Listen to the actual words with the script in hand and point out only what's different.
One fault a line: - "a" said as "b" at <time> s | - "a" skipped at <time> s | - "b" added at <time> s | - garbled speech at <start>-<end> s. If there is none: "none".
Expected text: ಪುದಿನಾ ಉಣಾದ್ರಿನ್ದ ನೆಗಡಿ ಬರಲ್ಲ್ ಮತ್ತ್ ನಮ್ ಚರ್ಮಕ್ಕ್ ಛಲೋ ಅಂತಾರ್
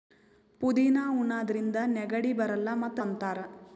- "ನಮ್ ಚರ್ಮಕ್ಕ್ ಛಲೋ" skipped at 3.0 s